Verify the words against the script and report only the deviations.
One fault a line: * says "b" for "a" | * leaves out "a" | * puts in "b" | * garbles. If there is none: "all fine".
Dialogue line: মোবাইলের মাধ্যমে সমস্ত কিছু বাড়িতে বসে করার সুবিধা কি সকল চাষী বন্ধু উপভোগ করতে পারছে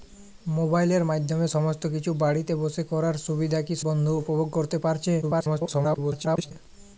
* leaves out "সকল চাষী"
* garbles